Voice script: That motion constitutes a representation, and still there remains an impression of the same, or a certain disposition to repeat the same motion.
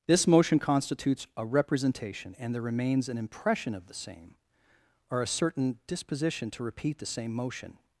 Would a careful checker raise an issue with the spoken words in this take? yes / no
yes